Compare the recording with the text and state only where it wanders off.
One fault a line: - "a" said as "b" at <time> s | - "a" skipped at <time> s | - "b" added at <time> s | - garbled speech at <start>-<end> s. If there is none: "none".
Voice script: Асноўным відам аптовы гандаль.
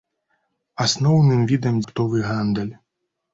none